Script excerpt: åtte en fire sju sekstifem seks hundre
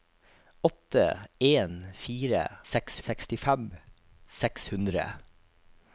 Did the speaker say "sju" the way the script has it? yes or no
no